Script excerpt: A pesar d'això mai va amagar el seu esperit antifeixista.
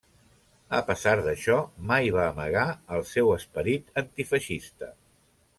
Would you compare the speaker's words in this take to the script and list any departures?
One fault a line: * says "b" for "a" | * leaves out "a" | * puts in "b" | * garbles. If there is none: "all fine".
all fine